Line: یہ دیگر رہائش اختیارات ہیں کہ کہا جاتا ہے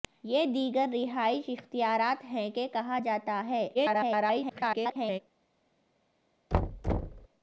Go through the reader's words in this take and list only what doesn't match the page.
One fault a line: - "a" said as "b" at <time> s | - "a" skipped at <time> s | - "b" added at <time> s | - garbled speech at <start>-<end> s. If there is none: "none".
- garbled speech at 3.7-5.2 s